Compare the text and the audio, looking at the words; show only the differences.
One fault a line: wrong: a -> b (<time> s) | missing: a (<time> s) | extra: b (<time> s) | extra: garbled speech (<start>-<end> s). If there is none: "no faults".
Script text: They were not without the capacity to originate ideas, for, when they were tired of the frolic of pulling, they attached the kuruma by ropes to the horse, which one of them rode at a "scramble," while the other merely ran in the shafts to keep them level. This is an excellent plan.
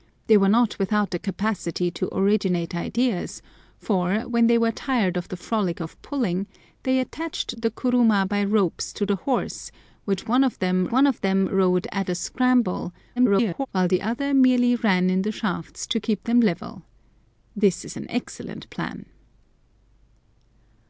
extra: one of them (10.9 s)
extra: garbled speech (13.2-13.7 s)